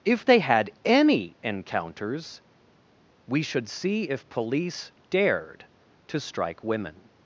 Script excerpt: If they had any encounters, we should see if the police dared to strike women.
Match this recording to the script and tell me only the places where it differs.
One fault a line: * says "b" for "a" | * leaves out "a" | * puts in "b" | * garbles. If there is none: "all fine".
* leaves out "the"